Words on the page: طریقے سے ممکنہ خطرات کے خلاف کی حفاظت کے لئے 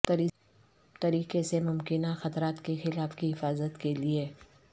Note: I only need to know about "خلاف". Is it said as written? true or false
true